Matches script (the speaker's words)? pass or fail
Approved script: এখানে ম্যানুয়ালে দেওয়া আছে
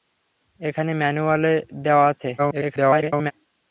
fail